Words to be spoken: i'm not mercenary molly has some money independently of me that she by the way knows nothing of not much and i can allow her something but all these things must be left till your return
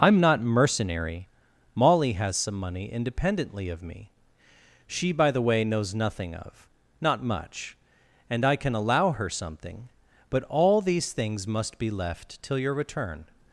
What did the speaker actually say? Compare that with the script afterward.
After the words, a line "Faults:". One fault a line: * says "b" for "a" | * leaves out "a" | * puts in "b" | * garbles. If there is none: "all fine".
i'm not mercenary molly has some money independently of me she by the way knows nothing of not much and i can allow her something but all these things must be left till your return
Faults:
* leaves out "that"